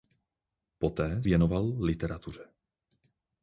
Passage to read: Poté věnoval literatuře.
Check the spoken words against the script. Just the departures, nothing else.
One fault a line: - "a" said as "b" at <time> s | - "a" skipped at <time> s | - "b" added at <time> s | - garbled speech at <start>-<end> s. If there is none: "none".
none